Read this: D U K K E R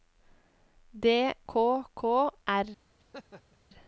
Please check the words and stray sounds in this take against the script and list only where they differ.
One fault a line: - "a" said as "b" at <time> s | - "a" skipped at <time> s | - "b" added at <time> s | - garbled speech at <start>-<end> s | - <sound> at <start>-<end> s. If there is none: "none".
- "U" skipped at 1.3 s
- "E" skipped at 2.3 s
- laugh at 3.0-3.6 s